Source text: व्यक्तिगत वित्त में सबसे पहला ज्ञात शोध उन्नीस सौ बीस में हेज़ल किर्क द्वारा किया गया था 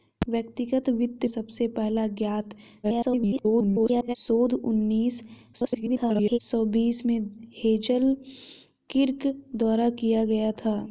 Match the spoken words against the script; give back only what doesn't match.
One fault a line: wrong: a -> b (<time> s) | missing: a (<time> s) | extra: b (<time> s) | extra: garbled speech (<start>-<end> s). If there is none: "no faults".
missing: में (1.2 s)
extra: garbled speech (2.8-4.2 s)
extra: garbled speech (5.5-6.4 s)